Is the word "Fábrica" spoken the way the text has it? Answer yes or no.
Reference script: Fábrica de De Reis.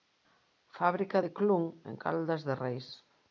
yes